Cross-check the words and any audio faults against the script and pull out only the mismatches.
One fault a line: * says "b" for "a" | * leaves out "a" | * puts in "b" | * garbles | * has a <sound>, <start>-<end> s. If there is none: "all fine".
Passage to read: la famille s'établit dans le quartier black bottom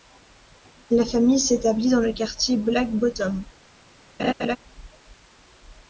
* has a laugh, 4.2-4.6 s